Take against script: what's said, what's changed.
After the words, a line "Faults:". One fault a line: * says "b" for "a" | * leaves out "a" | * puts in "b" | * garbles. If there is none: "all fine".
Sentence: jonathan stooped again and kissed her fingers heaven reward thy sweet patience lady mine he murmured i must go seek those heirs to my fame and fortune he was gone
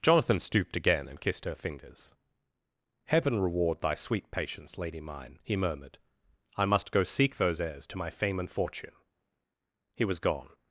jonathan stooped again and kissed her fingers heaven reward thy sweet patience lady mine he murmured i must go seek those heirs to my fame and fortune he was gone
Faults:
all fine